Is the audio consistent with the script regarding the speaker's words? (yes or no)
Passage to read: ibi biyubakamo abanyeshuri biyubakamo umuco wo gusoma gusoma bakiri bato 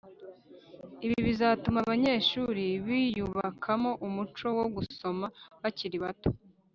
no